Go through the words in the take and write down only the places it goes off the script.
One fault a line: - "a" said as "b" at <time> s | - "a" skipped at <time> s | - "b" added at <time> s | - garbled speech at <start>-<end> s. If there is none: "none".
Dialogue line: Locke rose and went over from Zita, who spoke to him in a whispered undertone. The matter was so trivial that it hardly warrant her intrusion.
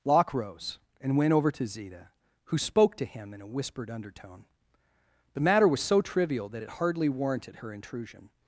- "from" said as "to" at 1.5 s
- "warrant" said as "warranted" at 7.1 s